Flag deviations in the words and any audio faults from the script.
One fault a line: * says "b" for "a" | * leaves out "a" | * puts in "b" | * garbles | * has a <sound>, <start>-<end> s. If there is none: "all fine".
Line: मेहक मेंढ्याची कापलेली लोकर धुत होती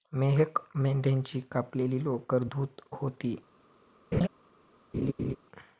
* has a laugh, 4.1-4.3 s
* has a laugh, 4.9-5.4 s